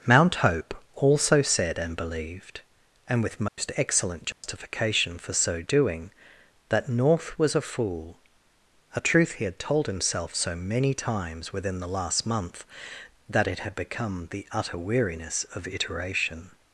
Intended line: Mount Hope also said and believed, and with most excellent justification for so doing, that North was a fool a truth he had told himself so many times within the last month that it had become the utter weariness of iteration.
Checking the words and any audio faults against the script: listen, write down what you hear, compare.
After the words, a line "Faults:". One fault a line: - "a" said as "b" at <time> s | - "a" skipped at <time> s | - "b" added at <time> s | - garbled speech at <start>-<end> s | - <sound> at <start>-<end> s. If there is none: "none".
Mount Hope also said and believed, and with most excellent justification for so doing, that North was a fool a truth he had told himself so many times within the last month that it had become the utter weariness of iteration.
Faults:
- dropout at 3.5-3.6 s
- dropout at 4.3-4.4 s